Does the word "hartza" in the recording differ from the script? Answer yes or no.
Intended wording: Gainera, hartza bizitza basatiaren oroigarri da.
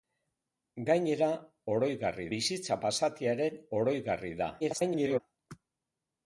yes